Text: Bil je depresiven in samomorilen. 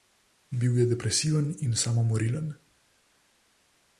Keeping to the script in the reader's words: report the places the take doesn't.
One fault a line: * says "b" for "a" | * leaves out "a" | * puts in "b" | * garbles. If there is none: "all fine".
all fine